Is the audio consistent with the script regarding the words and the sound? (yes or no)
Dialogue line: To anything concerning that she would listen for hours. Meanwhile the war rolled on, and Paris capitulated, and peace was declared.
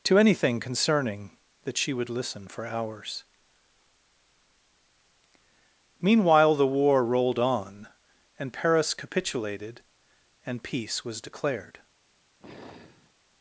no